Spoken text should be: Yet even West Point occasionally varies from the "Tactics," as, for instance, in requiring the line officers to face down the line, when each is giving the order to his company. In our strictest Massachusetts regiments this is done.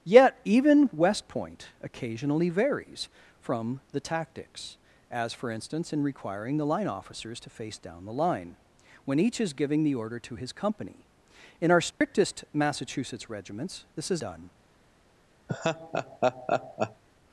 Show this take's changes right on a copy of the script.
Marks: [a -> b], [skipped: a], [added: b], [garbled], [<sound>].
Yet even West Point occasionally varies from the "Tactics," as, for instance, in requiring the line officers to face down the line, when each is giving the order to his company. In our strictest [dropout] Massachusetts regiments this is done. [laugh]